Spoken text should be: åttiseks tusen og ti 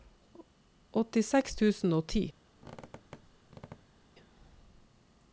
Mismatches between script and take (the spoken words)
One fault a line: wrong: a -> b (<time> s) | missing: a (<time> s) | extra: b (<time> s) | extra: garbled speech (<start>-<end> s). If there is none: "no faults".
no faults